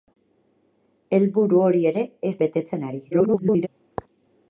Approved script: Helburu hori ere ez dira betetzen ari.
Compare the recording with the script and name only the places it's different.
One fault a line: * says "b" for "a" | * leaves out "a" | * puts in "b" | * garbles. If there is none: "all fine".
* leaves out "dira"
* garbles